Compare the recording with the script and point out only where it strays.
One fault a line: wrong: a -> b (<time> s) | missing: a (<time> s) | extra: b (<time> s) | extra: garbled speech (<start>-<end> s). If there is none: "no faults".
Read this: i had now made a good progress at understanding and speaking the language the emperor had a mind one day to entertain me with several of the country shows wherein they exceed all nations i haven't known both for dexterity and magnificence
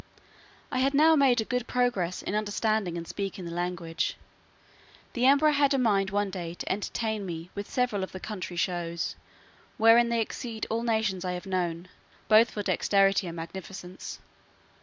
wrong: at -> in (2.2 s)
wrong: haven't -> have (11.3 s)